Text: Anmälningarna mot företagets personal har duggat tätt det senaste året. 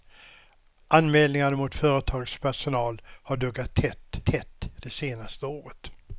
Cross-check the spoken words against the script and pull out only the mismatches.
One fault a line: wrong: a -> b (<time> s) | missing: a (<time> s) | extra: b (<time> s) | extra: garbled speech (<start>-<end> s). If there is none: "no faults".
extra: tätt (4.2 s)